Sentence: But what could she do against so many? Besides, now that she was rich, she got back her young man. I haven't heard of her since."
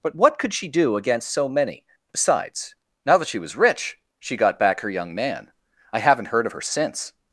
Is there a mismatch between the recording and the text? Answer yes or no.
no